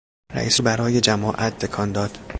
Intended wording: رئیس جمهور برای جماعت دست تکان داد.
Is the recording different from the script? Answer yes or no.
yes